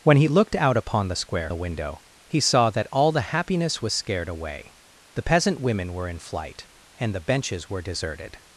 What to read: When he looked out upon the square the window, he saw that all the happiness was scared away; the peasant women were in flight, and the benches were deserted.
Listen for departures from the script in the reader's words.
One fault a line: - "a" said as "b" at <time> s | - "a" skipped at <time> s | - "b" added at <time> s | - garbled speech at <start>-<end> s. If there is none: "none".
none